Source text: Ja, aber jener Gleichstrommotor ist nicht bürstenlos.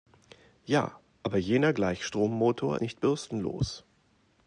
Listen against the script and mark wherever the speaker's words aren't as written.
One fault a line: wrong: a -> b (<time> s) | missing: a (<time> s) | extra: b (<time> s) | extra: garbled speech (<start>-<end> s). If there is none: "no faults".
missing: ist (2.8 s)